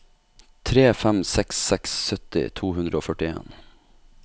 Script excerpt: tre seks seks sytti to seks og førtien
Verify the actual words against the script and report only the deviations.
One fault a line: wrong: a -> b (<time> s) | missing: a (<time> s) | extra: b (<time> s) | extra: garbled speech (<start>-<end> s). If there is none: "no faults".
extra: fem (1.0 s)
wrong: seks -> hundre (2.8 s)